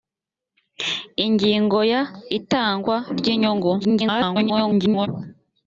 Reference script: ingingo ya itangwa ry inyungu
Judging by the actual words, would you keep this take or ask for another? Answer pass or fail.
fail